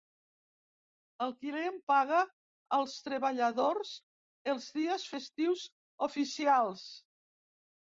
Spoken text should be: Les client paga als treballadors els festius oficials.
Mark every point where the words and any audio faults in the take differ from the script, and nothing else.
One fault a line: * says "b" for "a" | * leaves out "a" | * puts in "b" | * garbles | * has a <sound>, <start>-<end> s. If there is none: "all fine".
* says "El" for "Les"
* puts in "dies"